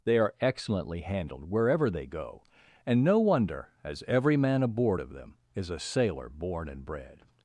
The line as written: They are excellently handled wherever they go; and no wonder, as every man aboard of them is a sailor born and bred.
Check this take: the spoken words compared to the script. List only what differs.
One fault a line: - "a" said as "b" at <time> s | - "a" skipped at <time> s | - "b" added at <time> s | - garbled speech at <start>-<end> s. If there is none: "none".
none